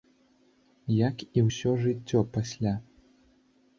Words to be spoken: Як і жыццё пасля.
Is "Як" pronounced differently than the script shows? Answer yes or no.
no